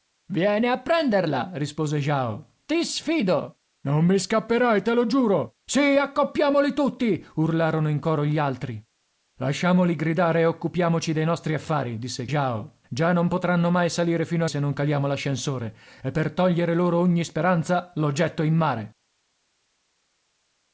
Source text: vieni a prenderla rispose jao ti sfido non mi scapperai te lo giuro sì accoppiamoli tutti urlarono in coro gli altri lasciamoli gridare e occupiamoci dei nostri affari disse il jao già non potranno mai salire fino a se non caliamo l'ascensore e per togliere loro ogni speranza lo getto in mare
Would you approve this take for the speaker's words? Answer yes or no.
yes